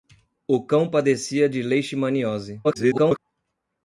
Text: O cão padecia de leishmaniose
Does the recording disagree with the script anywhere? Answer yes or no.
yes